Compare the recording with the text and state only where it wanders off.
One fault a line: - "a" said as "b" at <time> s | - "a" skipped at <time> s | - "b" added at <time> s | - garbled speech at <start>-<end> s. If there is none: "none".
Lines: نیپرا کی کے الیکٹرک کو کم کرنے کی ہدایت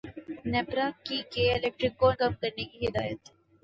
none